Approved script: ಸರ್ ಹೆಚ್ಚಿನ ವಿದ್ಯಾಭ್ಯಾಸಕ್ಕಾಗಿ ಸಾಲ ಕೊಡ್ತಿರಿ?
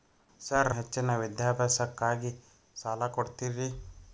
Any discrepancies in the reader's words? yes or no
no